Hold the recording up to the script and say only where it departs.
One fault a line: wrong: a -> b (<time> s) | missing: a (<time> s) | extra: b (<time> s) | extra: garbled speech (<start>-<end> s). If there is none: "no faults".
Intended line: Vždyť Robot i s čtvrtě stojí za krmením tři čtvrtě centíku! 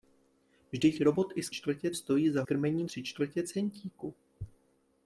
no faults